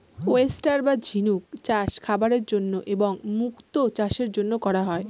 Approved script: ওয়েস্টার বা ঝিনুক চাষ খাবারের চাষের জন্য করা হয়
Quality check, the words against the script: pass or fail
fail